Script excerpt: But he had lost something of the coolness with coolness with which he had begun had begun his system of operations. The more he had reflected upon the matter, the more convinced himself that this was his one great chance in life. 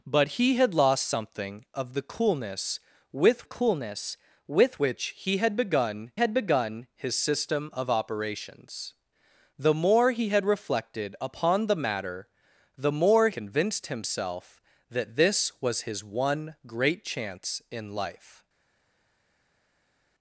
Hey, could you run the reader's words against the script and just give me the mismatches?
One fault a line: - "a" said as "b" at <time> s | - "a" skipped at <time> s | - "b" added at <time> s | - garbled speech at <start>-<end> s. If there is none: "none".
none